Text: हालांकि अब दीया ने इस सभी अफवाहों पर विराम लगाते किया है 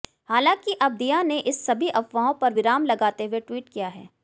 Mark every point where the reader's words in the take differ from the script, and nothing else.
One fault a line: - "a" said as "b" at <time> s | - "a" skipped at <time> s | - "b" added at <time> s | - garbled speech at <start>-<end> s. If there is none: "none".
- "हुए ट्वीट" added at 3.2 s